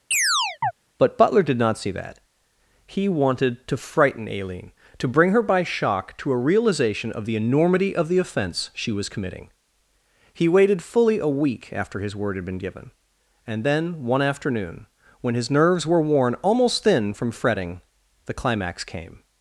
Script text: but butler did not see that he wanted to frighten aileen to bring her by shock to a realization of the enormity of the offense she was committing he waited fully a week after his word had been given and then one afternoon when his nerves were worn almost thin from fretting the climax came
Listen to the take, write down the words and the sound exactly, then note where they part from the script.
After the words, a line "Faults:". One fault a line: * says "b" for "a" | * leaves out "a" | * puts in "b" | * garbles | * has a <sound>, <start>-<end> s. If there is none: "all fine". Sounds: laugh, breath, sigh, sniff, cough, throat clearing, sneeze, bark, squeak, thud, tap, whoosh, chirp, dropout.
but butler did not see that he wanted to frighten aileen to bring her by shock to a realization of the enormity of the offense she was committing he waited fully a week after his word had been given and then one afternoon when his nerves were worn almost thin from fretting the climax came
Faults:
* has a chirp, 0.1-0.7 s